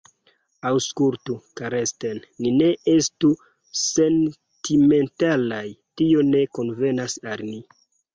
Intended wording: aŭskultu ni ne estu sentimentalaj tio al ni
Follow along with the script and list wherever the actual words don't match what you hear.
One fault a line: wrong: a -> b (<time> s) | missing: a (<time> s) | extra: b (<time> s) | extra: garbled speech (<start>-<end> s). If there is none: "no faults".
extra: karsten (1.6 s)
extra: ne konvenas (6.3 s)